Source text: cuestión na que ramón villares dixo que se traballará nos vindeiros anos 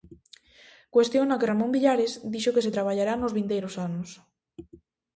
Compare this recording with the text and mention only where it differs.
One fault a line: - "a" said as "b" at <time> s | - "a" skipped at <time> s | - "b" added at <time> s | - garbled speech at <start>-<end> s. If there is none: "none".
none